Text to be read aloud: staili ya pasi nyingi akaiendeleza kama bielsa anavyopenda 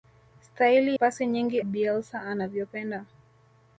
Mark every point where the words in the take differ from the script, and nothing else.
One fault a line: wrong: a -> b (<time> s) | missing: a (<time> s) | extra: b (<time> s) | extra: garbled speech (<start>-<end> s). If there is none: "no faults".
missing: ya (1.0 s)
missing: akaiendeleza kama (1.6 s)